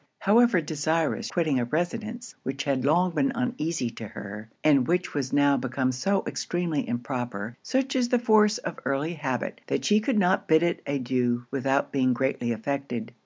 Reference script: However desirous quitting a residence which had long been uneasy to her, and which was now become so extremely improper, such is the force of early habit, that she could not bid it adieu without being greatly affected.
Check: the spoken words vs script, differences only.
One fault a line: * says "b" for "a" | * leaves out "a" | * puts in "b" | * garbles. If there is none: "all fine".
all fine